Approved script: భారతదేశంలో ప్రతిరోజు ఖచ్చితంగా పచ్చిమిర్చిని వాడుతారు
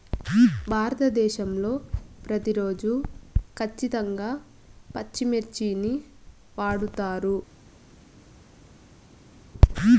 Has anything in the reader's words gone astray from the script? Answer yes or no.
no